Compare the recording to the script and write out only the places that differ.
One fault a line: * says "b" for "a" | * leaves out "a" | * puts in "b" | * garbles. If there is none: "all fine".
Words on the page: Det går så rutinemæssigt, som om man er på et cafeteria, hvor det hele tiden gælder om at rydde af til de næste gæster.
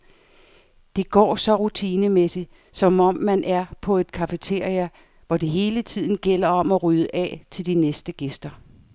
all fine